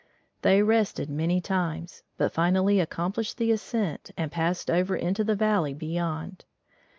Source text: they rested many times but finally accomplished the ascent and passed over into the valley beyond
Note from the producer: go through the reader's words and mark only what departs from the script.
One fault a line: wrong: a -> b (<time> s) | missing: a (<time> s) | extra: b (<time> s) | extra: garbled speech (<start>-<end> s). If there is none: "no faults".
no faults